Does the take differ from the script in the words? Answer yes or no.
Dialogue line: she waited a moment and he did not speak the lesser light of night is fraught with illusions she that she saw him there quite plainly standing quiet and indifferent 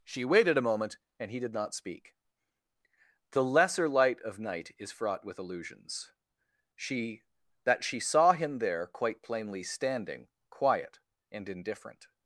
no